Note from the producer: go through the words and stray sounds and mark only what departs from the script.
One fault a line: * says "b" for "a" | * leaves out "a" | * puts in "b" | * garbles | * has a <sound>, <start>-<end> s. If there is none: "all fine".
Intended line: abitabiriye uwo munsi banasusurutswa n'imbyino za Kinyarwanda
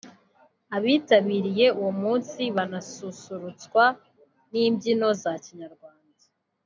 all fine